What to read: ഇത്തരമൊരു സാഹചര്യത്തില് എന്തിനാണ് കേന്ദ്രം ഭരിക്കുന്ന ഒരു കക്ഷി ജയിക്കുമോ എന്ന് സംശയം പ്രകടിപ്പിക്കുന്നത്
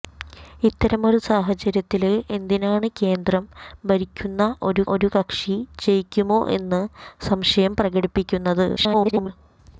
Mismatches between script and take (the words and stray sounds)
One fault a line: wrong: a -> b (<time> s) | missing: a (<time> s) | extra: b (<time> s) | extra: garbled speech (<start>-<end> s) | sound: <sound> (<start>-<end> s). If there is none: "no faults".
extra: ഒരു (4.9 s)
extra: garbled speech (8.8-9.3 s)